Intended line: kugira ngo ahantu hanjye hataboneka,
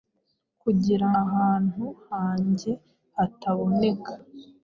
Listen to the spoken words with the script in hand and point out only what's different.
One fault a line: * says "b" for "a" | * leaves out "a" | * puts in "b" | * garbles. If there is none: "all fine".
* leaves out "ngo"